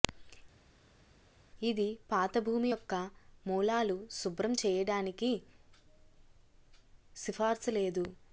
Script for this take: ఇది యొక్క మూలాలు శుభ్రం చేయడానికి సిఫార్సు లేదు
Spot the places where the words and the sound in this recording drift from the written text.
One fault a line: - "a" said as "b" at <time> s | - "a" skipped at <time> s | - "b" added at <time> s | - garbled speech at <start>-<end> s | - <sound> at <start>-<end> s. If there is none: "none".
- "పాత భూమి" added at 2.1 s